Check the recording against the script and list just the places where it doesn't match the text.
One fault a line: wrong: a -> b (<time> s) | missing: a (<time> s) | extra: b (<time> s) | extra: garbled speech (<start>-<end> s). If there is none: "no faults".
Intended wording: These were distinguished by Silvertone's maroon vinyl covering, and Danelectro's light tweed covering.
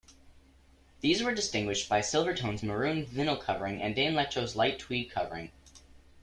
no faults